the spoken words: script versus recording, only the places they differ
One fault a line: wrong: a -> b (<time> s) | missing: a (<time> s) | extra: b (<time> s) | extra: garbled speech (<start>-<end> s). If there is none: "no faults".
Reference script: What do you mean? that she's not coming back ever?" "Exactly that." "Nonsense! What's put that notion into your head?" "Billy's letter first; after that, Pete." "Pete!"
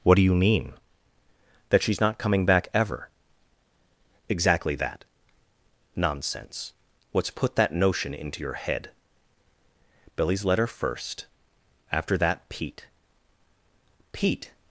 no faults